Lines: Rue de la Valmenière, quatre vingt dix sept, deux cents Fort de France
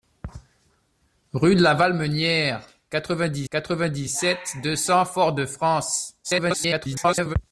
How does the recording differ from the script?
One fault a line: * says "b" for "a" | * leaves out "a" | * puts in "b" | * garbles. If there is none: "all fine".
* puts in "quatre vingt dix"
* garbles